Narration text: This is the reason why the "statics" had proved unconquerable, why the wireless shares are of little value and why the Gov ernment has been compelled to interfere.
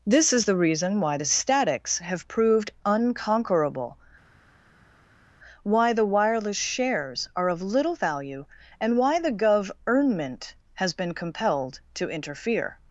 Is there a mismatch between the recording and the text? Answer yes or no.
yes